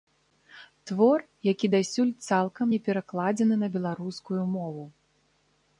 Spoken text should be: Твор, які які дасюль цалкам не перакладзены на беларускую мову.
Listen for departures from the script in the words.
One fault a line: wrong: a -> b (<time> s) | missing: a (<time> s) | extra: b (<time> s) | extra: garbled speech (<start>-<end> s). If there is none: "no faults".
missing: які (1.7 s)